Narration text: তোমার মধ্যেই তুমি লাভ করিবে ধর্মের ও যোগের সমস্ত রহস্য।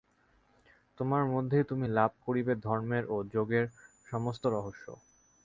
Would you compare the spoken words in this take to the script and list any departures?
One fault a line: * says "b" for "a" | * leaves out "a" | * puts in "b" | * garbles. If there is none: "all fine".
all fine